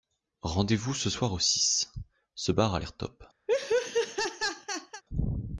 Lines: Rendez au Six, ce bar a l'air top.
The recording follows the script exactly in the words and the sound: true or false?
false